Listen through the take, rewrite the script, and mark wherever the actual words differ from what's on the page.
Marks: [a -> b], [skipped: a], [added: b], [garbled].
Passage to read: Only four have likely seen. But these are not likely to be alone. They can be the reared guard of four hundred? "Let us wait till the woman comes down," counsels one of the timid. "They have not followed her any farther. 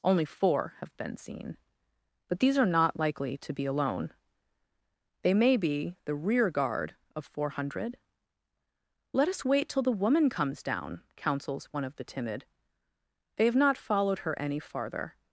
Only four have [likely -> been] seen. But these are not likely to be alone. They [can -> may] be the [reared -> rear] guard of four hundred? "Let us wait till the woman comes down," counsels one of the timid. "They have not followed her any farther.